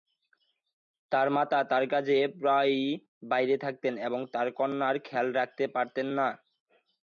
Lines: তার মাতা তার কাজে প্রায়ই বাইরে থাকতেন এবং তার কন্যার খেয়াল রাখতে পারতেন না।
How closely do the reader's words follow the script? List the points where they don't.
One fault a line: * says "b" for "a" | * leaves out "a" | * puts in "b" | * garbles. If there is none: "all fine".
all fine